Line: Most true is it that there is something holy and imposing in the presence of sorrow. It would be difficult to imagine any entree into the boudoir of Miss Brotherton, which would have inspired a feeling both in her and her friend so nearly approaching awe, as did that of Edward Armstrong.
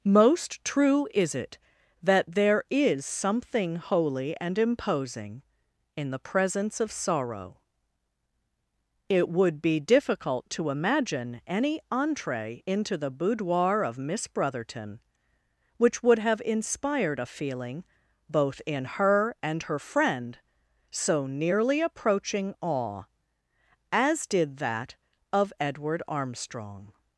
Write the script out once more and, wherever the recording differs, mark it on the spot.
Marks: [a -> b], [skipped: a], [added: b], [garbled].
Most true is it that there is something holy and imposing in the presence of sorrow. It would be difficult to imagine any entree into the boudoir of Miss Brotherton, which would have inspired a feeling both in her and her friend so nearly approaching awe, as did that of Edward Armstrong.